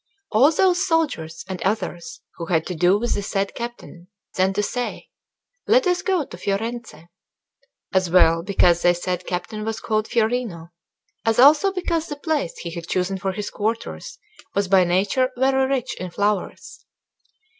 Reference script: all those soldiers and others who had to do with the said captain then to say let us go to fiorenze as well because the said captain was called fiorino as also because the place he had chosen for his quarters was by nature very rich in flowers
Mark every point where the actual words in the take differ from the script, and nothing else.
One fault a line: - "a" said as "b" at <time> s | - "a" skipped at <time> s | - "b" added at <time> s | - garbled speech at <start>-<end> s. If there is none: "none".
none